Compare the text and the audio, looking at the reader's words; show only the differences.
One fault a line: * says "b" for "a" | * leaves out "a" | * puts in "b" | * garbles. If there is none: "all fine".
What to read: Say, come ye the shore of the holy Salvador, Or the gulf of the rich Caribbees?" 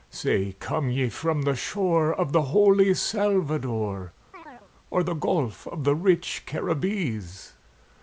* puts in "from"